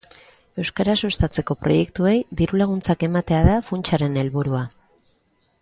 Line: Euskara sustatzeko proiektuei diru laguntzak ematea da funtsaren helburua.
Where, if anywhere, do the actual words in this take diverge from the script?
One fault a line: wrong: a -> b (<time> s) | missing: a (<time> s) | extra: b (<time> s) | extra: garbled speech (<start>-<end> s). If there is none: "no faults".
no faults